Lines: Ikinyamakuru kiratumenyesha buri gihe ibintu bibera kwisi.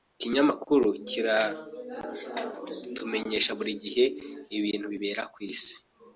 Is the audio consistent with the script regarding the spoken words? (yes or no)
yes